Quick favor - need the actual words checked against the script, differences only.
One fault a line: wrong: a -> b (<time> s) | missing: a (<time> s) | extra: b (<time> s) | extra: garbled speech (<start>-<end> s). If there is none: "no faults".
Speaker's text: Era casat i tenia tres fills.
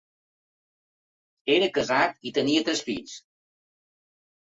no faults